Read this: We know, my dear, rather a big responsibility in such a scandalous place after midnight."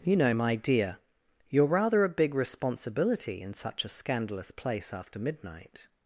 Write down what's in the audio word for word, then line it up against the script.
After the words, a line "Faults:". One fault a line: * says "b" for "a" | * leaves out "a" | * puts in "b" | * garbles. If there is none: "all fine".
You know, my dear, you're rather a big responsibility in such a scandalous place after midnight."
Faults:
* says "You" for "We"
* puts in "you're"